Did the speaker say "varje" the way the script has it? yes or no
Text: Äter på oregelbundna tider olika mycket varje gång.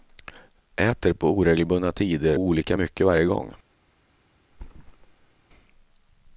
yes